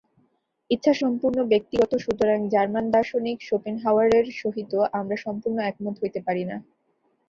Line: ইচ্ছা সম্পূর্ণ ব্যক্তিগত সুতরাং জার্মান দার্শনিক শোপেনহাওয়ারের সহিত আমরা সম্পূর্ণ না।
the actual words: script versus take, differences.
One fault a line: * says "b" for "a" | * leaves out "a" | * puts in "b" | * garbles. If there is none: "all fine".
* puts in "একমত হইতে পারি"